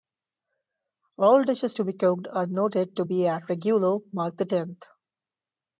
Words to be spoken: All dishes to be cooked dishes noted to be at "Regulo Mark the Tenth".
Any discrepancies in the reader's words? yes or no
yes